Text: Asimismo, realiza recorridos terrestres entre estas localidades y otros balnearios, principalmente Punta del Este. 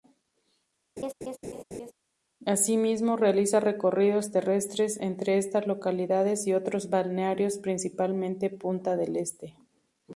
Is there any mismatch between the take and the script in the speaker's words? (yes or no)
no